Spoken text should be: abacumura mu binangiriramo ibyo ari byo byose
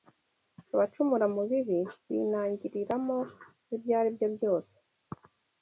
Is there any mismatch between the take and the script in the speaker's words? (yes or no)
yes